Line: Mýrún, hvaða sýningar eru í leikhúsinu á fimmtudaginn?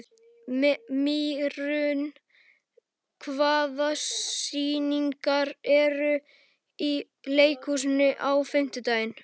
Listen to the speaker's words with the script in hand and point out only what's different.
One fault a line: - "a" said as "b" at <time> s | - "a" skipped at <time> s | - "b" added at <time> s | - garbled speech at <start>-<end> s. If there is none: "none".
none